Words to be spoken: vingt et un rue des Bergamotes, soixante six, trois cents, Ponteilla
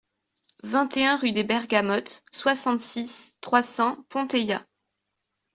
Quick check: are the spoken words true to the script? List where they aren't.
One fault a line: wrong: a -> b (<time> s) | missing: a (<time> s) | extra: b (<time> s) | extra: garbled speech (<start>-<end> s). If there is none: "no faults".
no faults